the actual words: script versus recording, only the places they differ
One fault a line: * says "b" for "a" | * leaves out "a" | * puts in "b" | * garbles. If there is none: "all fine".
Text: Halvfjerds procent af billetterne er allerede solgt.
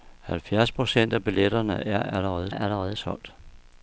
* puts in "allerede"